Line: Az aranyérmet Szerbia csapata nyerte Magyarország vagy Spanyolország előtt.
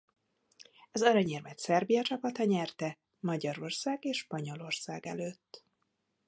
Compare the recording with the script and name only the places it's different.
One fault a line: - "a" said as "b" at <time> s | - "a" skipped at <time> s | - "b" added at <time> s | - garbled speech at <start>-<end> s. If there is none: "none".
- "vagy" said as "és" at 4.0 s